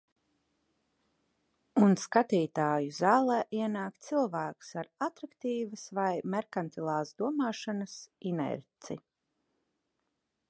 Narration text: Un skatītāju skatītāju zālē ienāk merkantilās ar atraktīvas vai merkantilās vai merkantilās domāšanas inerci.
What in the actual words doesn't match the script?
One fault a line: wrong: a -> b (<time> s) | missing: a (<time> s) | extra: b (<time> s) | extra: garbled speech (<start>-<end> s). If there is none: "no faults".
missing: skatītāju (3.0 s)
wrong: merkantilās -> cilvēks (4.1 s)
missing: vai merkantilās (7.1 s)